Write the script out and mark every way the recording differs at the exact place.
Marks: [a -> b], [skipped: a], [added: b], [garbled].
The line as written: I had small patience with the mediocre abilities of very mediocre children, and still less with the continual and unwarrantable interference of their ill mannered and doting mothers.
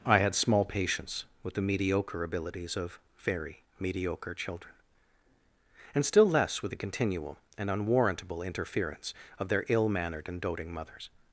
I had small patience with the mediocre abilities of very mediocre children, and still less with the continual and unwarrantable interference of their ill mannered and doting mothers.